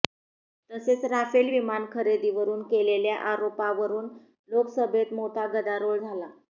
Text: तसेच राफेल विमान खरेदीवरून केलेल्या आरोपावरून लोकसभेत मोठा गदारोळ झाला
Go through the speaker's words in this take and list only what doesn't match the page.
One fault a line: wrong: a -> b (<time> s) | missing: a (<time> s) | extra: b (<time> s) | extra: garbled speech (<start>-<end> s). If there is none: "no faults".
no faults